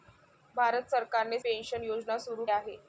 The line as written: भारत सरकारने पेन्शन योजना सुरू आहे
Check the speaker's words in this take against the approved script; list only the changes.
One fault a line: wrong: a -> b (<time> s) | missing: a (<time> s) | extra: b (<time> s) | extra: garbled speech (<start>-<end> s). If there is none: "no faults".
no faults